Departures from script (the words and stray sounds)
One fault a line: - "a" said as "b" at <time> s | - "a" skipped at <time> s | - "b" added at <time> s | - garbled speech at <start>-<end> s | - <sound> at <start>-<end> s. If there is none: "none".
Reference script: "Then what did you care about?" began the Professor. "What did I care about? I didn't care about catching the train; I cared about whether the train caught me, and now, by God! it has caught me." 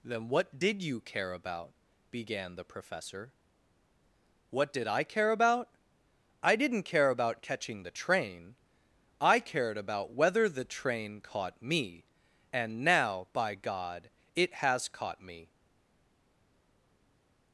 none